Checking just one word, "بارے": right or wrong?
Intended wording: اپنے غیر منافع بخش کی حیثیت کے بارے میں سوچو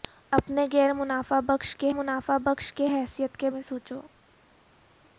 wrong